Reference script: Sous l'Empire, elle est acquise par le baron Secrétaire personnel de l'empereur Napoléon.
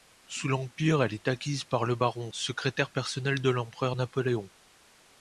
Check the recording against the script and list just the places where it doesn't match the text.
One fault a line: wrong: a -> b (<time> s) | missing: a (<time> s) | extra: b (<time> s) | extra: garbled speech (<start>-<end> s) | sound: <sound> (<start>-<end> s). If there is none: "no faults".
no faults